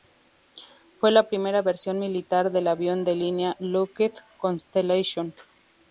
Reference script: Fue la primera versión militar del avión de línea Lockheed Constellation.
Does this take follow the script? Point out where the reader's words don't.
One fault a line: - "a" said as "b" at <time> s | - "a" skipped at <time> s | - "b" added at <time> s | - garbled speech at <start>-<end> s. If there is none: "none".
none